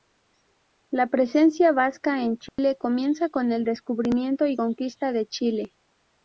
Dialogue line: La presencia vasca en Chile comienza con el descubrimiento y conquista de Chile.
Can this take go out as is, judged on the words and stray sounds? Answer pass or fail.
fail